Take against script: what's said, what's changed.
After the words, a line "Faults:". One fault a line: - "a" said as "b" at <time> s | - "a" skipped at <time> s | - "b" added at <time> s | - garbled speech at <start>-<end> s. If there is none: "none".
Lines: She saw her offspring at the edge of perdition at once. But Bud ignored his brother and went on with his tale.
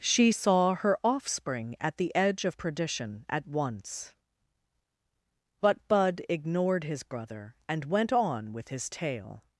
She saw her offspring at the edge of perdition at once. But Bud ignored his brother and went on with his tale.
Faults:
none